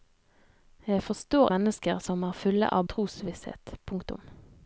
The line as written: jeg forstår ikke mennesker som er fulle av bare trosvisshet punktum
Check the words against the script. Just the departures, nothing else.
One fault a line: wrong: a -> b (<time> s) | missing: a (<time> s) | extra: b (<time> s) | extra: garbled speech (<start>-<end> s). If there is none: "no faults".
missing: ikke (1.5 s)
missing: bare (2.9 s)